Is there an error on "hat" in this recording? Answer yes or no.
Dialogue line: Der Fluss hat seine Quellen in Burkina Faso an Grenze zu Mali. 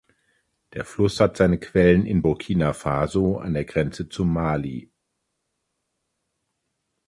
no